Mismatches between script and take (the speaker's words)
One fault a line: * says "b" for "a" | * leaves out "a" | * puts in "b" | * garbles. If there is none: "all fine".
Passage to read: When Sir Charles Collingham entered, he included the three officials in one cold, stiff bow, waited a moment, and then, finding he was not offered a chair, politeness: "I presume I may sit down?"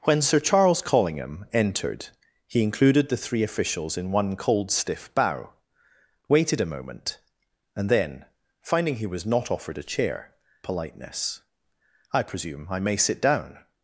all fine